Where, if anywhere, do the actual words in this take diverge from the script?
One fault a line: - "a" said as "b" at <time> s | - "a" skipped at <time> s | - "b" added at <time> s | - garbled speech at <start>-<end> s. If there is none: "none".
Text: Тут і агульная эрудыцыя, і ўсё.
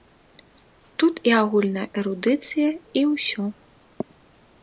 none